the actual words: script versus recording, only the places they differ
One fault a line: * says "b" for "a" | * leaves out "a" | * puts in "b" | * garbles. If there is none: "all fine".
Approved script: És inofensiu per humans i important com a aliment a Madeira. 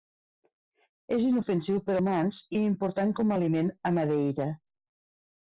all fine